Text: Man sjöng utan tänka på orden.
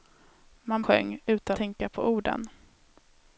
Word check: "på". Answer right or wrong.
right